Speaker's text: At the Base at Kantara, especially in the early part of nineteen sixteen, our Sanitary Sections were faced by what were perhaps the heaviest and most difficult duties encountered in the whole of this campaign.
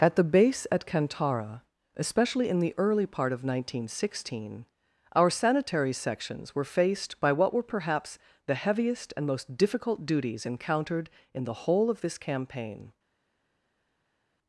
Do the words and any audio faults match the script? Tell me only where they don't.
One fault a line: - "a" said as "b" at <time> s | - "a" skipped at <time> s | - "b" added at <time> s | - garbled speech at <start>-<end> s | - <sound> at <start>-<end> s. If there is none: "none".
none